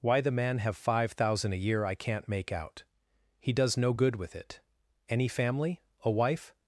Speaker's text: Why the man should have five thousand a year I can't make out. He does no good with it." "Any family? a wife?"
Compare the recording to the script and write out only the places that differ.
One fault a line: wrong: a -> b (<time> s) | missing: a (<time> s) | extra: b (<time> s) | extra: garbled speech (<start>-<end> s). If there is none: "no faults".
missing: should (0.6 s)